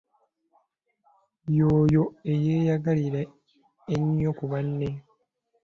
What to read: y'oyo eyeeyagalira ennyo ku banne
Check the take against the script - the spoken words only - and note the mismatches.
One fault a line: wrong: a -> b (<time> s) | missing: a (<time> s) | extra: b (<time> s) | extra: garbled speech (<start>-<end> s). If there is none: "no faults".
no faults